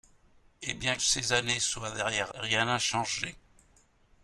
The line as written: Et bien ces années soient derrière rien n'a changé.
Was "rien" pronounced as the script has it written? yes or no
yes